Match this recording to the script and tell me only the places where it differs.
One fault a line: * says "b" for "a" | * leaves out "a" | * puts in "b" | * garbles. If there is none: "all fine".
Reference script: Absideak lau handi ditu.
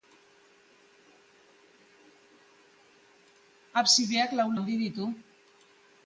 all fine